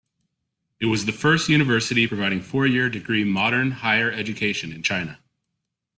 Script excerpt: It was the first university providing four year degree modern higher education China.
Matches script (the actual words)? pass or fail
fail